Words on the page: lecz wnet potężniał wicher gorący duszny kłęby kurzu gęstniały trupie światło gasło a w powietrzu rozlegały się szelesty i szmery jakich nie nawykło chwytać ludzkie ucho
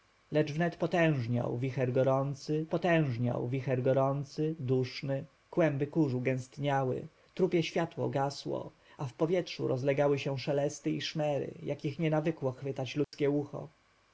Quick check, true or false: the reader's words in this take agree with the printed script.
false